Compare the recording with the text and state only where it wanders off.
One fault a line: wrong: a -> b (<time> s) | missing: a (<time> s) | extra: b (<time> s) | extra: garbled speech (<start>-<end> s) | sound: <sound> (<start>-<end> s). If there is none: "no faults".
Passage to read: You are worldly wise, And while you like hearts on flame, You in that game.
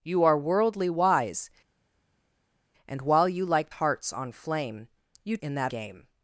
no faults